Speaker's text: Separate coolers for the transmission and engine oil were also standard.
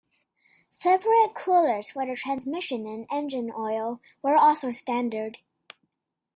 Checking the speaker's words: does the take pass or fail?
pass